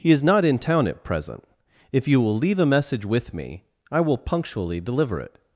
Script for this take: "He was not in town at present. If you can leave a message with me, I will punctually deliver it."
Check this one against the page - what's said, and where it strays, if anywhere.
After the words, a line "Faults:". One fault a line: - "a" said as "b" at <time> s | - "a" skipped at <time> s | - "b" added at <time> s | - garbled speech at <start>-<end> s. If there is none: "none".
"He is not in town at present. If you will leave a message with me, I will punctually deliver it."
Faults:
- "was" said as "is" at 0.1 s
- "can" said as "will" at 2.2 s